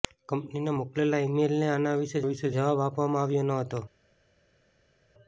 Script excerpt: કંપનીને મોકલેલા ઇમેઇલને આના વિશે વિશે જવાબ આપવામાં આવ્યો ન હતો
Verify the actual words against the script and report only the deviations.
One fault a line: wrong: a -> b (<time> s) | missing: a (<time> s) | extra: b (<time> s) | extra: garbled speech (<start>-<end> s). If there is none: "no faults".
no faults